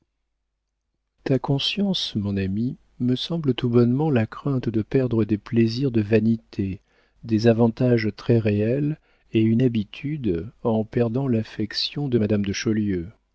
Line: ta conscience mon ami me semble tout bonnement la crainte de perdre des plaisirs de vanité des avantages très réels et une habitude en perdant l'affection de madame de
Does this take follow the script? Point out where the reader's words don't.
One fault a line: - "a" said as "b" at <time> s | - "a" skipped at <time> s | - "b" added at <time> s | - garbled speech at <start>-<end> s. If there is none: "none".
none